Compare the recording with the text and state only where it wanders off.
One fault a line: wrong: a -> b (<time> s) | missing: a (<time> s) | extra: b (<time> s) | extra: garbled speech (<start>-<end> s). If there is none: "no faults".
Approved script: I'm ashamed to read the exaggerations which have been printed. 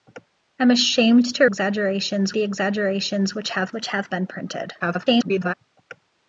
wrong: read -> exaggerations (1.4 s)
extra: which have (3.7 s)
extra: garbled speech (4.8-5.5 s)